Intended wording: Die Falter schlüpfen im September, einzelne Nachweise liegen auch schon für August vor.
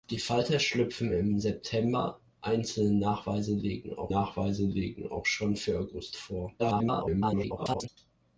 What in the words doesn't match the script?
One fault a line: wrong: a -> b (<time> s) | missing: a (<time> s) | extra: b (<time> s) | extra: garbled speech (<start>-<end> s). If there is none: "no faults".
extra: Nachweise liegen auch (4.1 s)
extra: garbled speech (6.6-7.9 s)